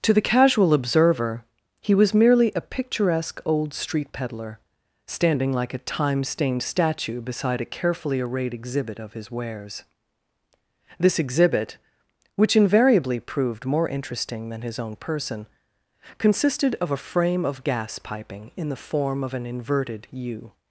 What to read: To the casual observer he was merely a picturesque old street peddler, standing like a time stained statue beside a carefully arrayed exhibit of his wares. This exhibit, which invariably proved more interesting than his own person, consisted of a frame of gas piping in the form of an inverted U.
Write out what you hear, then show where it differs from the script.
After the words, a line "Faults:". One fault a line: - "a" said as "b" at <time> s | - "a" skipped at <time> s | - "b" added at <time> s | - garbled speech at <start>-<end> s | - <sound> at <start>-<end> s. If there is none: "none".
To the casual observer he was merely a picturesque old street peddler, standing like a time stained statue beside a carefully arrayed exhibit of his wares. This exhibit, which invariably proved more interesting than his own person, consisted of a frame of gas piping in the form of an inverted U.
Faults:
none